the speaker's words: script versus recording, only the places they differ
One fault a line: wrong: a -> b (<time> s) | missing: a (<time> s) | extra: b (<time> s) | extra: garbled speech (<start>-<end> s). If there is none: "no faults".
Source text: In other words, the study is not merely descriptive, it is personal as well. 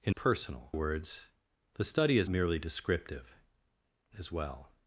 wrong: other -> personal (0.1 s)
missing: not (2.3 s)
missing: it is personal (3.4 s)